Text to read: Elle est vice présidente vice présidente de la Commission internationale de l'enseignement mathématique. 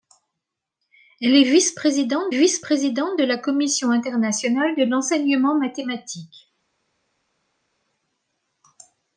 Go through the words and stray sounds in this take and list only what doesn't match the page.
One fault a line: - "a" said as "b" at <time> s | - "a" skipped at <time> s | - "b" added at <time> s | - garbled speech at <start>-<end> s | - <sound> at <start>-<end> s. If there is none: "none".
none